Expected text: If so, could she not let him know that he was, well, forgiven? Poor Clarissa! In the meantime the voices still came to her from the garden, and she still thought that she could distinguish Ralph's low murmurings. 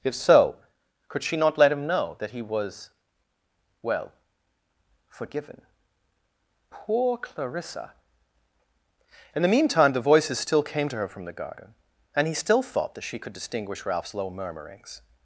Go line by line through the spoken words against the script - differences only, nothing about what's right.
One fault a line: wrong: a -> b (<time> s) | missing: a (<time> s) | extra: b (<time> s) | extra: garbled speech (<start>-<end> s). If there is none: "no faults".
wrong: she -> he (12.3 s)